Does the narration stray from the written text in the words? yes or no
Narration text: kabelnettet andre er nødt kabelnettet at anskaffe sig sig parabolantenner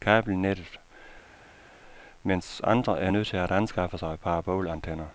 yes